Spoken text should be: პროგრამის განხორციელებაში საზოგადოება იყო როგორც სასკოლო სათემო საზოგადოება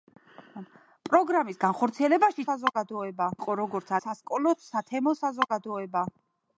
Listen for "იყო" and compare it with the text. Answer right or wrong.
right